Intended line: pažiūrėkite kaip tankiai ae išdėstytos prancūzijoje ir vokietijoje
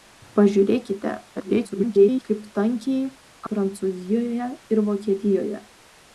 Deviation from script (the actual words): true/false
true